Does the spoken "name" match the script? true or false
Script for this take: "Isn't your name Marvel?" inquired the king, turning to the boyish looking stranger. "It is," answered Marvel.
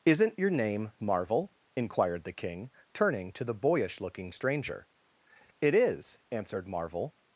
true